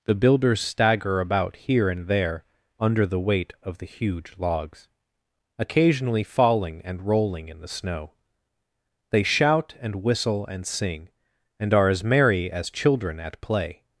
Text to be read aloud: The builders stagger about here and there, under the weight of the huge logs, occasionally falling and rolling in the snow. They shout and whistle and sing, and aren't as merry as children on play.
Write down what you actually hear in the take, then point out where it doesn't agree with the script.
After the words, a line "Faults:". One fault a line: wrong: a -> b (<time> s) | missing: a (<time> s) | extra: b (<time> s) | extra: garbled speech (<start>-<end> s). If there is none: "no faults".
The builders stagger about here and there, under the weight of the huge logs, occasionally falling and rolling in the snow. They shout and whistle and sing, and are as merry as children at play.
Faults:
wrong: aren't -> are (11.7 s)
wrong: on -> at (13.2 s)